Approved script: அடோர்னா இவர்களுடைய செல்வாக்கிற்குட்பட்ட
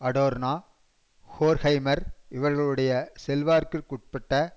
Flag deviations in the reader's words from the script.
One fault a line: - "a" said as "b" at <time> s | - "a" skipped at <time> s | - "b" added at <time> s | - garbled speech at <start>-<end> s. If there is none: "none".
- "ஹோர்க்ஹைமர்" added at 1.3 s